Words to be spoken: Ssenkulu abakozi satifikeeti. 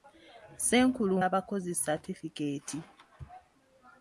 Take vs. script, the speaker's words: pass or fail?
pass